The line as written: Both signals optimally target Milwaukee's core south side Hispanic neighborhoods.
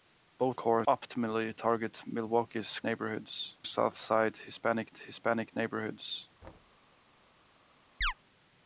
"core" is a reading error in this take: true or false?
true